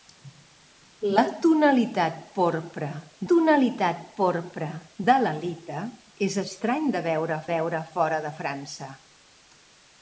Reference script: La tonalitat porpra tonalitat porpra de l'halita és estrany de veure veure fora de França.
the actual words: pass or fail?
pass